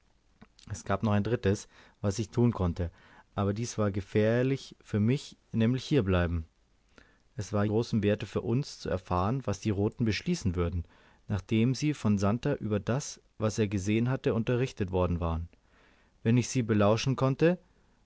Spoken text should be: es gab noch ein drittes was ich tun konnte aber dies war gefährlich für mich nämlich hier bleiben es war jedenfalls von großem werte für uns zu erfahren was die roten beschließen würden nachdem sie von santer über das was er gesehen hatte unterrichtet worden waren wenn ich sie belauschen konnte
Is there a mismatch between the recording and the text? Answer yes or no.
yes